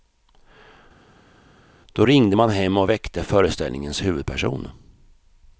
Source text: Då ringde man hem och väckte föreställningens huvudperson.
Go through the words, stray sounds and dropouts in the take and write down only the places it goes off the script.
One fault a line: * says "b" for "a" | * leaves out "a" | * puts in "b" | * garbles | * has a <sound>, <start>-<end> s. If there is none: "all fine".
all fine